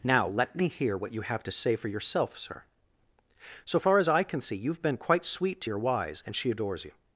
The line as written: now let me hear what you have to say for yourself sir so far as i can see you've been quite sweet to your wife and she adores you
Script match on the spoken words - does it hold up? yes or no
no